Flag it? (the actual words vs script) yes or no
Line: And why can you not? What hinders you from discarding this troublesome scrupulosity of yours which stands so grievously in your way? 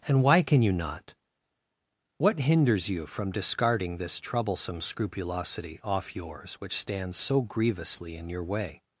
yes